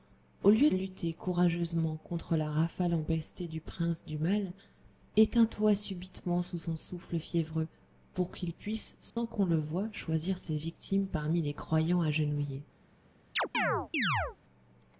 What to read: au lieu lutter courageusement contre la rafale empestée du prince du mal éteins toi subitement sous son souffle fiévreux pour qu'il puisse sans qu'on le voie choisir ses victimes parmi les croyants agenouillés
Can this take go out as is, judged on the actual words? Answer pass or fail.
pass